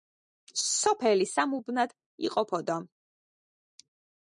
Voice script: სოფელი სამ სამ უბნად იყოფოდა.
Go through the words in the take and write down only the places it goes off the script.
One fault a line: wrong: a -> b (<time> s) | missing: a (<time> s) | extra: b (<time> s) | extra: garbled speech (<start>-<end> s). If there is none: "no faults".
missing: სამ (1.5 s)